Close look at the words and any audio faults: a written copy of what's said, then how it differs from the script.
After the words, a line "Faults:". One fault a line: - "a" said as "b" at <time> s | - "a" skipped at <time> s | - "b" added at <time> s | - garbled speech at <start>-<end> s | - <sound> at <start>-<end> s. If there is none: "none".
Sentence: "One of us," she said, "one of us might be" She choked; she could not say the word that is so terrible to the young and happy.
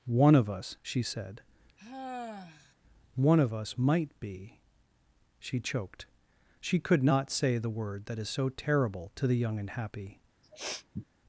"One of us," she said, "one of us might be" She choked; she could not say the word that is so terrible to the young and happy.
Faults:
- sigh at 1.8-2.7 s
- sniff at 10.4-11.0 s